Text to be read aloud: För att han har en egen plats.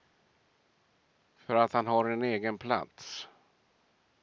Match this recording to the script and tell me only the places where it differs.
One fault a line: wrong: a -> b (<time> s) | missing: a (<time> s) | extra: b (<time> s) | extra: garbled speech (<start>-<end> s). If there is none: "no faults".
no faults